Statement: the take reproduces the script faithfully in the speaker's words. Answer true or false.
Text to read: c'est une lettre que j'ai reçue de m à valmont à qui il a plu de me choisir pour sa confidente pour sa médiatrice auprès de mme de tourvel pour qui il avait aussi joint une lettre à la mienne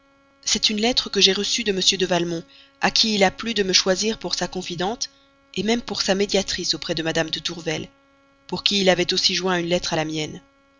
false